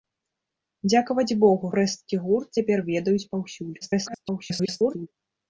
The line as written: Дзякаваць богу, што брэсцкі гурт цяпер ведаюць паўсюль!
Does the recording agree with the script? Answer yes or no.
no